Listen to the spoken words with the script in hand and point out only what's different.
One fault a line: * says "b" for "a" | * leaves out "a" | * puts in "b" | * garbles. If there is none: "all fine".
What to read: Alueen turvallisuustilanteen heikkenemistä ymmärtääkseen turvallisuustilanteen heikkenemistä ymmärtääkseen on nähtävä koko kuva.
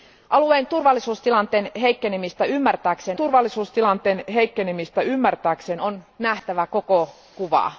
all fine